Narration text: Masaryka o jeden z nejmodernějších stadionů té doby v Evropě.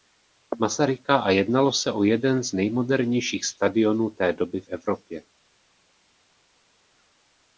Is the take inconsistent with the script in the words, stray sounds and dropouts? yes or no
yes